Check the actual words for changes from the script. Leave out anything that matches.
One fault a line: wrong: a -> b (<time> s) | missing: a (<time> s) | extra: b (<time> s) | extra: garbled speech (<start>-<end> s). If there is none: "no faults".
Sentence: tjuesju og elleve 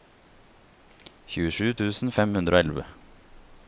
extra: tusen fem hundre (1.8 s)